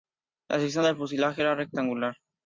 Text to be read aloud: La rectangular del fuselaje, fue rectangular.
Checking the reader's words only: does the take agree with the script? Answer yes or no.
no